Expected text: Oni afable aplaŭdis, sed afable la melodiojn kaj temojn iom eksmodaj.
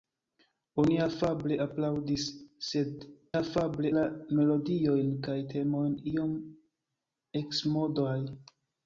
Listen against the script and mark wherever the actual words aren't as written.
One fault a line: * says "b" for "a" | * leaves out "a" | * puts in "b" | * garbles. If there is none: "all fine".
all fine